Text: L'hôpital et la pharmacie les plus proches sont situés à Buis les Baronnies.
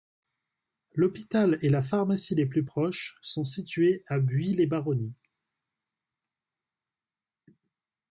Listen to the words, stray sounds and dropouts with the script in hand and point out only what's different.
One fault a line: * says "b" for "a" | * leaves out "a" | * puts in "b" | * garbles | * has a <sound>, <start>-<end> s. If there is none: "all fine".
all fine